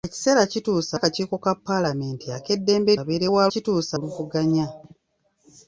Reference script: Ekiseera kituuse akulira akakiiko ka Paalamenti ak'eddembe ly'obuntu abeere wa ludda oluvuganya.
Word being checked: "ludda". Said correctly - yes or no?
no